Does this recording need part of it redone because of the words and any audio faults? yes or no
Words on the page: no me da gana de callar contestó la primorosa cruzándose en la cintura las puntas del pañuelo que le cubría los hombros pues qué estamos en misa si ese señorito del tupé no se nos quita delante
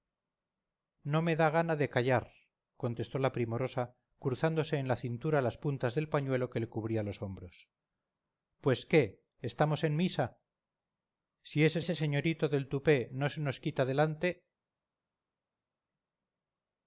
yes